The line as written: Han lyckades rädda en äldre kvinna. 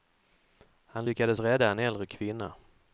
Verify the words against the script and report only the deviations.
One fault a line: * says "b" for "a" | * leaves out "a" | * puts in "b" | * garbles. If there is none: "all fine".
all fine